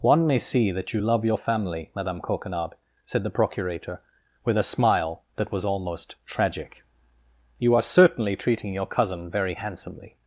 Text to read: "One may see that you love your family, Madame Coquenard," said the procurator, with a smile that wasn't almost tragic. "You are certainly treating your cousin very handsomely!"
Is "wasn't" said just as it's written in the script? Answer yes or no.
no